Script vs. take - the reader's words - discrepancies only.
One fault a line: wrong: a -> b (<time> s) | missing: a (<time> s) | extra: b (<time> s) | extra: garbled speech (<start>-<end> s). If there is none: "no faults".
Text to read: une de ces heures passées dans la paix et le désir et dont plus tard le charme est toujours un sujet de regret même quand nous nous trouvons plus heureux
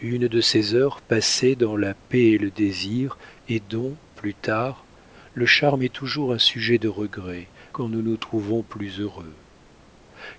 missing: même (7.5 s)